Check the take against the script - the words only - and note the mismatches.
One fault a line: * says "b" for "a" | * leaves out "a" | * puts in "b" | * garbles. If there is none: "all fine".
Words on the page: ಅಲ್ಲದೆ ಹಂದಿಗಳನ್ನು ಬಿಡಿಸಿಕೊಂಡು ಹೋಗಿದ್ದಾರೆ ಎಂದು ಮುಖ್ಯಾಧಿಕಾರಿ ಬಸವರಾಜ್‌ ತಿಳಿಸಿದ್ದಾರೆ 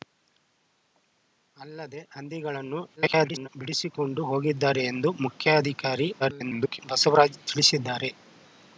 * garbles
* garbles